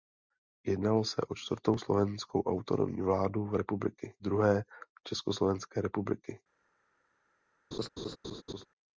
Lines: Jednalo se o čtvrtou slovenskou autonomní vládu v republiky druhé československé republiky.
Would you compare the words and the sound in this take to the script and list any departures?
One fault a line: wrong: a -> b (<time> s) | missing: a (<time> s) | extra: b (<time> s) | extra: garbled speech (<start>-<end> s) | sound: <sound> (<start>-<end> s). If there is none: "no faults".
sound: laugh (7.7-8.7 s)